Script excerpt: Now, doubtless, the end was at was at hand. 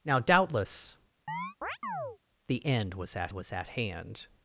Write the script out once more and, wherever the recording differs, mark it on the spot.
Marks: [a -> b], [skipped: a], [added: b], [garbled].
Now, doubtless, the end was at was at hand.